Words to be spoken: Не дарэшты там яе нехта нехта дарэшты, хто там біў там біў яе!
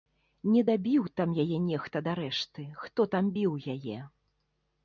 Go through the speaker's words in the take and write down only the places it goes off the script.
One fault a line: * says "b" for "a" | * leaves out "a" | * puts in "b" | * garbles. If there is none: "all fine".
* says "дабіў" for "дарэшты"
* leaves out "нехта"
* leaves out "там біў"